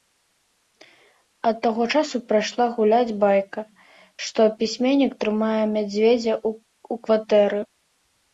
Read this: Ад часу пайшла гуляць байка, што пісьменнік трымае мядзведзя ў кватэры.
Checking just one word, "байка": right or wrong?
right